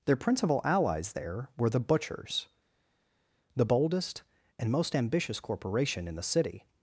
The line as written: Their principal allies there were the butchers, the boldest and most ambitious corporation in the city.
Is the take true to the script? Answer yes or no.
yes